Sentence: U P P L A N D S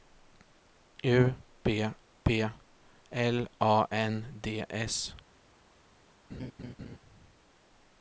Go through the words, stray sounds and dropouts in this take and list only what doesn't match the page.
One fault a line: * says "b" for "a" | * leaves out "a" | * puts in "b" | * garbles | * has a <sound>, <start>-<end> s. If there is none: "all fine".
* has a laugh, 6.3-7.0 s